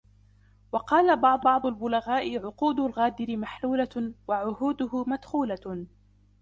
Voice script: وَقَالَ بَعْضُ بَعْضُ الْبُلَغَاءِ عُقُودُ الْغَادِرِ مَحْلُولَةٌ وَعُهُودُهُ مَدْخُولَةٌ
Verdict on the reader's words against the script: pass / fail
pass